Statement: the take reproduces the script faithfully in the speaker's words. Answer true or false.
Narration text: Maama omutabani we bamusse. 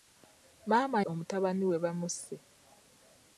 true